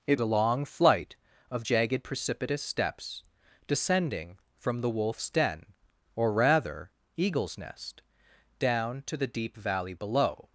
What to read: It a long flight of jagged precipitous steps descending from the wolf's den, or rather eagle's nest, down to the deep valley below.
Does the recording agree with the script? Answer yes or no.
yes